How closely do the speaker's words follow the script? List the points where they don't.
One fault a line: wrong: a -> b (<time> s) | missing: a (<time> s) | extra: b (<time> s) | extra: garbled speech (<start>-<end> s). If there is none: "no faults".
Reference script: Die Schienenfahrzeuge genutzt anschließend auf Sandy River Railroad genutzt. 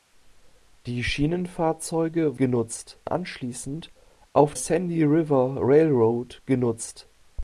no faults